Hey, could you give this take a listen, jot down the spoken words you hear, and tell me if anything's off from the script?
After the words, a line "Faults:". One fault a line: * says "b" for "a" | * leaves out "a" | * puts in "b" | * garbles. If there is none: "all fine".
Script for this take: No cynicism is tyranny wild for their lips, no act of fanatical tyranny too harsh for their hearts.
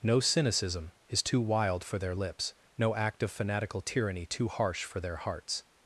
No cynicism is too wild for their lips, no act of fanatical tyranny too harsh for their hearts.
Faults:
* says "too" for "tyranny"